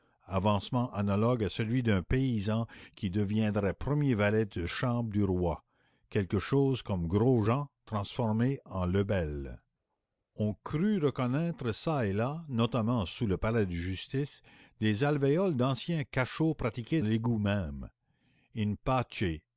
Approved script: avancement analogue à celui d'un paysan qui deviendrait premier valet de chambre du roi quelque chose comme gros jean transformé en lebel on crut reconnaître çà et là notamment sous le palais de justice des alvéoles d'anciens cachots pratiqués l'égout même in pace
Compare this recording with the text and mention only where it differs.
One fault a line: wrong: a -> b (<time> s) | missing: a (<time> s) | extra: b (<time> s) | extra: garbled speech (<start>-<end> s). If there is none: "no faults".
no faults